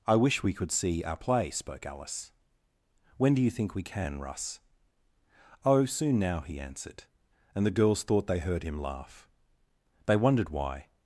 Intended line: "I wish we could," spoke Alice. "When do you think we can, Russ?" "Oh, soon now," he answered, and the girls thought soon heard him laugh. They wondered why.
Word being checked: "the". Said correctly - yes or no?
yes